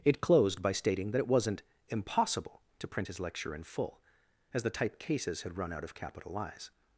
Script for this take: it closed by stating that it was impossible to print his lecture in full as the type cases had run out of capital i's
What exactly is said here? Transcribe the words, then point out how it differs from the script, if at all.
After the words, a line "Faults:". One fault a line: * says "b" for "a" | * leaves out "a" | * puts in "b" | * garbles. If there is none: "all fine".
it closed by stating that it wasn't impossible to print his lecture in full as the type cases had run out of capital i's
Faults:
* says "wasn't" for "was"